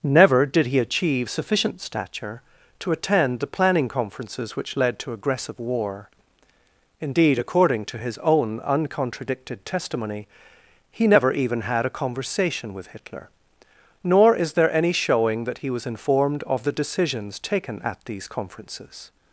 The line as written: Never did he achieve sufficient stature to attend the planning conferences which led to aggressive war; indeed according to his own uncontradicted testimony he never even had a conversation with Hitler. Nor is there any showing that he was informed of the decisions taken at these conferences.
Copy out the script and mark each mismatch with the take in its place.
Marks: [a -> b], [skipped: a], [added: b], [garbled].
Never did he achieve sufficient stature to attend the planning conferences which led to aggressive war; indeed according to his own uncontradicted testimony he never even had a conversation with Hitler. Nor is there any showing that he was informed of the decisions taken at these conferences.